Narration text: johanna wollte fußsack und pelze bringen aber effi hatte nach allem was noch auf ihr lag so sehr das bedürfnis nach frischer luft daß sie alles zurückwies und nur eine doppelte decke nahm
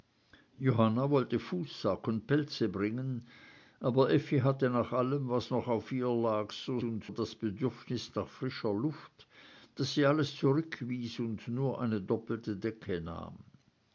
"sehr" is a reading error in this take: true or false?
true